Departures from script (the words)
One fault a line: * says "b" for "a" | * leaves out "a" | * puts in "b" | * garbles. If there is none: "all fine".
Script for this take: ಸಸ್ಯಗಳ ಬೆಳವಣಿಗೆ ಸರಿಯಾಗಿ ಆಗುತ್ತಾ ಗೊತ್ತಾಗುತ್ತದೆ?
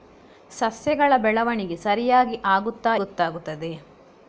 all fine